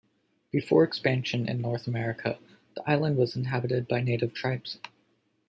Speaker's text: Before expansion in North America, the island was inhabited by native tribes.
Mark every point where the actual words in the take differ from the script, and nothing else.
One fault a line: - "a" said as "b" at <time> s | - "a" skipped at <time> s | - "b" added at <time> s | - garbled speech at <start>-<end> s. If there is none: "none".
none